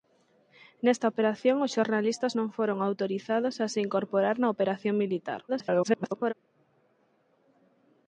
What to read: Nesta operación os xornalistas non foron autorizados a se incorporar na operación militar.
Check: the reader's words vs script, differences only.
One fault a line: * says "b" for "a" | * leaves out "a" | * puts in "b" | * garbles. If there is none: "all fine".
* garbles